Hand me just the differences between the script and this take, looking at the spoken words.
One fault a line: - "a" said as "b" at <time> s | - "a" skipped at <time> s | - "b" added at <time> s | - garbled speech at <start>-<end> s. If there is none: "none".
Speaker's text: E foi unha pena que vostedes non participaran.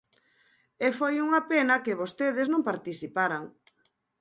none